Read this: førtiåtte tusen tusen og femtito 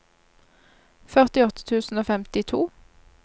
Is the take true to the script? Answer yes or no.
no